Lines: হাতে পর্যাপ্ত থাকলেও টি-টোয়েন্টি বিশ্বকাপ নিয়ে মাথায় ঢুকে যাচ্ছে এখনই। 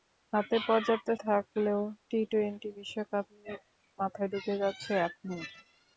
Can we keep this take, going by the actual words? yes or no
yes